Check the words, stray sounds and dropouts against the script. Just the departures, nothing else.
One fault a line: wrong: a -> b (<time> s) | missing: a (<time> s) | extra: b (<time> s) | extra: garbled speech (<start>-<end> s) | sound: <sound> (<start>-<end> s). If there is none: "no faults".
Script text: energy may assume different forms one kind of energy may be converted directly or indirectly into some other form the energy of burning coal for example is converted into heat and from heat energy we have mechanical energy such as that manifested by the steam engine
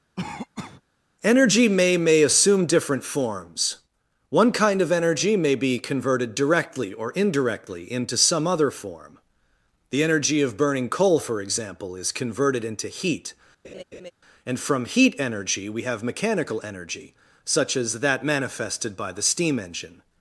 sound: cough (0.2-0.8 s)
extra: may (2.0 s)
sound: laugh (13.6-14.1 s)